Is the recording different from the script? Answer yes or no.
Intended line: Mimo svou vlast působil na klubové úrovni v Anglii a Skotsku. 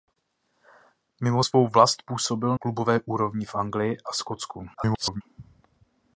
yes